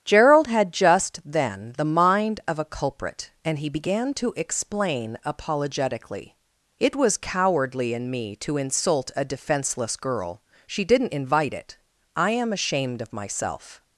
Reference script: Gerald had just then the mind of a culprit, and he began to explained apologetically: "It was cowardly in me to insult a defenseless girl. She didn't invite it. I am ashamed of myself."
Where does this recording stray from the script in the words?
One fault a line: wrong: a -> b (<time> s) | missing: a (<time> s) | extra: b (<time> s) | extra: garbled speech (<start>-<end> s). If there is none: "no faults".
wrong: explained -> explain (4.3 s)